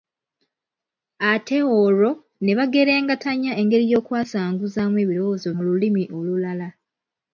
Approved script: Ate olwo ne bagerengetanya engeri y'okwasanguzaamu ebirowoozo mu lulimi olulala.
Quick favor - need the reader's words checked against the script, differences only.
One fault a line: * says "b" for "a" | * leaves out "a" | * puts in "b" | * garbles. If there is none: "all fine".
all fine